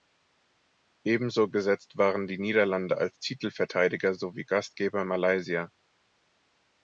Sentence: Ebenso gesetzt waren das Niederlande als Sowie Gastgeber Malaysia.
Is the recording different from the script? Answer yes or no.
yes